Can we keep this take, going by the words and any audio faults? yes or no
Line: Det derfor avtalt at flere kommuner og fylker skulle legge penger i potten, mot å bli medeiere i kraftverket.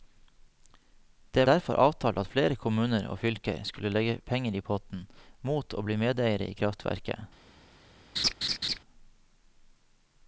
no